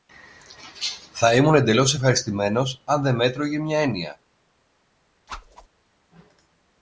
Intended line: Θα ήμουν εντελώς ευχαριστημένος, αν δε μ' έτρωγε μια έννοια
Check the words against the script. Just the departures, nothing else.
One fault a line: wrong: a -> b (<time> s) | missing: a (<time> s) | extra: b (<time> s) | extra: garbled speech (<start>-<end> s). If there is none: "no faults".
no faults